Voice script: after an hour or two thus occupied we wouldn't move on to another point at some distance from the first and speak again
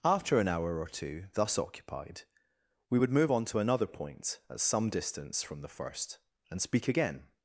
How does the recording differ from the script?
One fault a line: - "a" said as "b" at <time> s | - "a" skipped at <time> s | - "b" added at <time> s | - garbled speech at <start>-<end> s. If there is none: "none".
- "wouldn't" said as "would" at 2.9 s